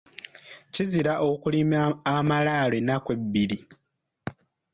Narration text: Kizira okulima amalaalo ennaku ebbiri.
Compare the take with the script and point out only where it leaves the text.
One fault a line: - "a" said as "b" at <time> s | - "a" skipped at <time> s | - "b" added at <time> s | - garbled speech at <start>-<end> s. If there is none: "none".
none